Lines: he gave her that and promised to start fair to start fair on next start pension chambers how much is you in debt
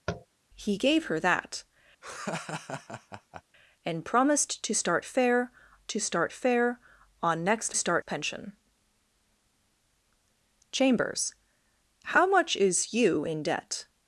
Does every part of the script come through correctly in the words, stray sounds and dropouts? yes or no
no